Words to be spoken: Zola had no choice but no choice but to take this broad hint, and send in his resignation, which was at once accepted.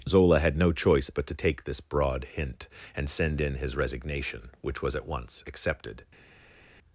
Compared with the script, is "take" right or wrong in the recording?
right